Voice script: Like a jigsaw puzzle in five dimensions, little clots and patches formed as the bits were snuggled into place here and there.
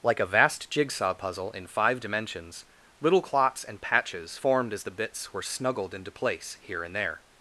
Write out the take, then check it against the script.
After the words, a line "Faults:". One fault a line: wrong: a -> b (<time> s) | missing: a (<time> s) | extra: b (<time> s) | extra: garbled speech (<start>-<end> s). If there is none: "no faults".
Like a vast jigsaw puzzle in five dimensions, little clots and patches formed as the bits were snuggled into place here and there.
Faults:
extra: vast (0.2 s)